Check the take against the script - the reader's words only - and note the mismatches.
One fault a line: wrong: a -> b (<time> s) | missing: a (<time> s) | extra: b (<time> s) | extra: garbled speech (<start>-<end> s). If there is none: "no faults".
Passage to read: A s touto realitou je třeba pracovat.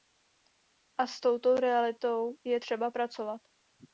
no faults